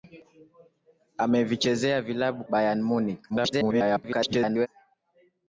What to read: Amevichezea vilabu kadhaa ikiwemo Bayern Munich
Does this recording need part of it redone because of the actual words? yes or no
yes